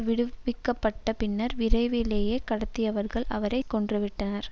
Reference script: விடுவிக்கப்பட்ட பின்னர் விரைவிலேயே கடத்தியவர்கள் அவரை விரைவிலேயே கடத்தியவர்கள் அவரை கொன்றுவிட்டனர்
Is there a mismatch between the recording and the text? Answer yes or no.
yes